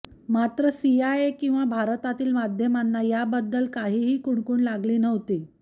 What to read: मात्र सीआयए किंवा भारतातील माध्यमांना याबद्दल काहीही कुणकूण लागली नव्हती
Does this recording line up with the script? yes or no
yes